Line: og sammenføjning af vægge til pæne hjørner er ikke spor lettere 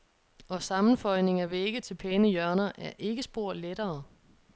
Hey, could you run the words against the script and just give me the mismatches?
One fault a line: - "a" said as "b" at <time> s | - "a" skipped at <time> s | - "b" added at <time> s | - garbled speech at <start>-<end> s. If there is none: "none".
none